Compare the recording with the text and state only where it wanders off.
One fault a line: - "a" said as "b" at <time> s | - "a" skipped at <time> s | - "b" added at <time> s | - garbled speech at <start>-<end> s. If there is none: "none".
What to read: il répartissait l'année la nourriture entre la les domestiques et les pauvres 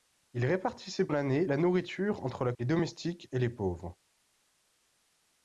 none